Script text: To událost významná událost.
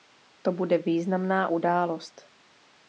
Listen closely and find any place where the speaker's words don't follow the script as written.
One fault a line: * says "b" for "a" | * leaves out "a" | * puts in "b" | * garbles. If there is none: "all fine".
* says "bude" for "událost"